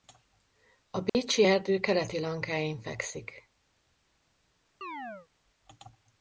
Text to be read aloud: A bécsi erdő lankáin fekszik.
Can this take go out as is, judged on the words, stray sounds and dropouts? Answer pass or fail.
fail